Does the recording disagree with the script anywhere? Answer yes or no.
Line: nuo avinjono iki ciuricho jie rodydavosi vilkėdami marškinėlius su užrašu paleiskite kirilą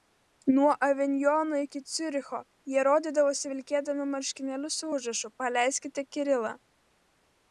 no